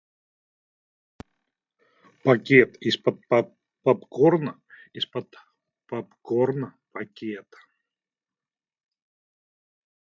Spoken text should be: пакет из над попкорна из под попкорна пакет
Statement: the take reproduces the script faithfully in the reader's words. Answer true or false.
false